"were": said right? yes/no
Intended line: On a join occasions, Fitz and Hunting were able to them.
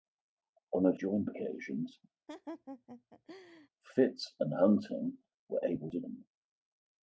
yes